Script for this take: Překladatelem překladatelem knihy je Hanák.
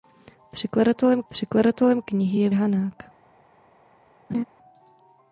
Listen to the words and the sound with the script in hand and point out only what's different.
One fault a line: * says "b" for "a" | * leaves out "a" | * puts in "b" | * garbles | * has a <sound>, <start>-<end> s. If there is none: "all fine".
* has a laugh, 4.3-4.4 s